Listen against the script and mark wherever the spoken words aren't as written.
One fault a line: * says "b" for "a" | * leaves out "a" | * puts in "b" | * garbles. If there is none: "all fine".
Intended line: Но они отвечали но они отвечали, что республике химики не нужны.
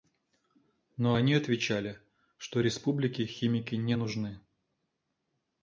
* leaves out "но они отвечали"